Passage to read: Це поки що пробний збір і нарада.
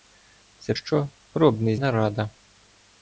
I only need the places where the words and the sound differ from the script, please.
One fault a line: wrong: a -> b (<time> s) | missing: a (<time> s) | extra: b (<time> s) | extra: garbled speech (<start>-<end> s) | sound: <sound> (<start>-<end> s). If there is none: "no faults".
missing: поки (0.7 s)
missing: збір і (1.8 s)